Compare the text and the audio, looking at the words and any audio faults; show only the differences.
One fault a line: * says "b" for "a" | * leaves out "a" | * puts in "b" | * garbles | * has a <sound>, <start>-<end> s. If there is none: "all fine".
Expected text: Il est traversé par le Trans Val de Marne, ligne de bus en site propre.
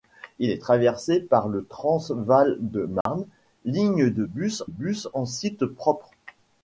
* has a dropout, 3.0-3.1 s
* puts in "bus"